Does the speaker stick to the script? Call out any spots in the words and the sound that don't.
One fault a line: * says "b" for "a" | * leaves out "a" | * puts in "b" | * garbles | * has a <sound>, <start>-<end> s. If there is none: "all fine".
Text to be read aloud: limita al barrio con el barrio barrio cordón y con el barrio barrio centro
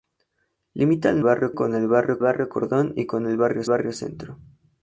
all fine